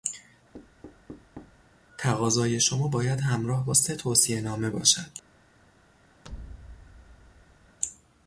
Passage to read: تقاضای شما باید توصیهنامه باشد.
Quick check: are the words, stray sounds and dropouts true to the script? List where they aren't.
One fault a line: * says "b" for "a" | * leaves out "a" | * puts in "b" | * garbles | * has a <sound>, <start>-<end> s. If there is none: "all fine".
* has a thud, 0.5-1.6 s
* puts in "همراه با سه"
* has a thud, 6.2-7.8 s